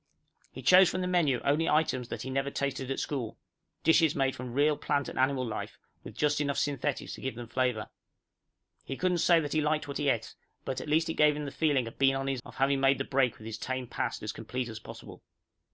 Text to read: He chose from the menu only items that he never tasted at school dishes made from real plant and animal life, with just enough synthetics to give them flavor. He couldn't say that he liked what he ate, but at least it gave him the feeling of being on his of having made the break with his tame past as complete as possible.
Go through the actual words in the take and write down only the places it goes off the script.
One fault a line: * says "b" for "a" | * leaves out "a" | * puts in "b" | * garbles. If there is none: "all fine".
all fine